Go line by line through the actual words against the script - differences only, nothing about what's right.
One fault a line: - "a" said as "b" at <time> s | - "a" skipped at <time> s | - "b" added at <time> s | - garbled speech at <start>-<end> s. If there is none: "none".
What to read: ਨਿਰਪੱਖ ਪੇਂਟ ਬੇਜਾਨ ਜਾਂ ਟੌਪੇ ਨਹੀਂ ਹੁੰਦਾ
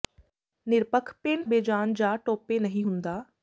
none